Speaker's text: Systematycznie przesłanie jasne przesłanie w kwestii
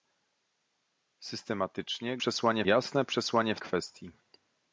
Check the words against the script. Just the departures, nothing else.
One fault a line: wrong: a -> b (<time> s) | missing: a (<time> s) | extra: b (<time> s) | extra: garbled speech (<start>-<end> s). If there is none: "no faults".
no faults